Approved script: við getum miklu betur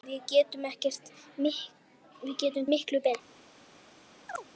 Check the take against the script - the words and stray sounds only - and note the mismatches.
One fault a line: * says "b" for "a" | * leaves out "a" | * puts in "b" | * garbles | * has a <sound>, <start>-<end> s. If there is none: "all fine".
* has a chirp, 4.3-4.5 s